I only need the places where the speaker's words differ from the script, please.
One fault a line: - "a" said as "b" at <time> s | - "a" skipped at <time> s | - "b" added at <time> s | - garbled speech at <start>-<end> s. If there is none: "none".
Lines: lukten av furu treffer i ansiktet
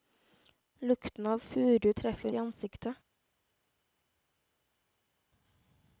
none